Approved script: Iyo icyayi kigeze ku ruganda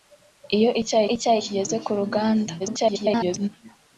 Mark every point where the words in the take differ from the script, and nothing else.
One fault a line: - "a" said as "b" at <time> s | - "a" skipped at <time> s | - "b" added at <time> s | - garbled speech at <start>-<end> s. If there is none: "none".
- "icyayi" added at 1.1 s
- garbled speech at 2.6-3.5 s